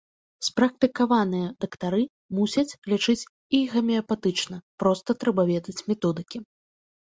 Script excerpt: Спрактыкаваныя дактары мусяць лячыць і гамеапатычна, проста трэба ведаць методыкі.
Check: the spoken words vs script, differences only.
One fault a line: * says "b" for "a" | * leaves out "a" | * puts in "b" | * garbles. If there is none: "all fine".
all fine